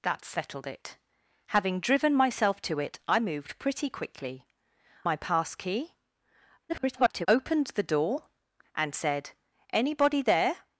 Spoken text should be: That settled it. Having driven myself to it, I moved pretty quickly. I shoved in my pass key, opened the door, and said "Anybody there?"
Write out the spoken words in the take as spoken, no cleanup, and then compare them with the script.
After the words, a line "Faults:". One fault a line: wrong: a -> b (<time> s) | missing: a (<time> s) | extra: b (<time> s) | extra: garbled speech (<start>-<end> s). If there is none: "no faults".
That settled it. Having driven myself to it, I moved pretty quickly. my pass key, [garbled] opened the door, and said "Anybody there?"
Faults:
missing: I shoved in (4.5 s)
extra: garbled speech (6.7-7.3 s)